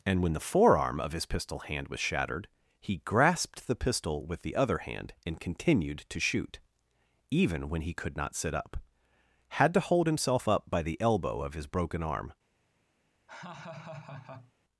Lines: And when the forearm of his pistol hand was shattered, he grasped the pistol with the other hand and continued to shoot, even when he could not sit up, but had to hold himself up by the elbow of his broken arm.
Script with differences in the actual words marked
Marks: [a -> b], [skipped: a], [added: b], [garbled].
And when the forearm of his pistol hand was shattered, he grasped the pistol with the other hand and continued to shoot, even when he could not sit up, [skipped: but] had to hold himself up by the elbow of his broken arm.